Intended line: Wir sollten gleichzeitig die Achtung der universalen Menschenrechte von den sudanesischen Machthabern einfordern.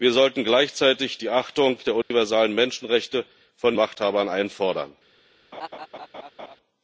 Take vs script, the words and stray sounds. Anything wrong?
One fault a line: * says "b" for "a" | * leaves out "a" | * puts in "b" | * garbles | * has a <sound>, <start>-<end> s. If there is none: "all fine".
* has a dropout, 2.0-2.1 s
* leaves out "den sudanesischen"
* has a laugh, 5.5-6.6 s